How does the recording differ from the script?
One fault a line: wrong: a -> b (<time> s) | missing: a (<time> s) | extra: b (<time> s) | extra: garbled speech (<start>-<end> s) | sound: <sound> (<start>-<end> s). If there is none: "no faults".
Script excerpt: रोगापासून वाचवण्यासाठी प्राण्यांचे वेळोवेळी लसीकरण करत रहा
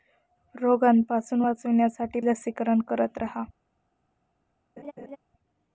missing: प्राण्यांचे वेळोवेळी (2.2 s)
sound: laugh (4.8-5.2 s)